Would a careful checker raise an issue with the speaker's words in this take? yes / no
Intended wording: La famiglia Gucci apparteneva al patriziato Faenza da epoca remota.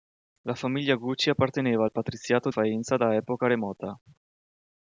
no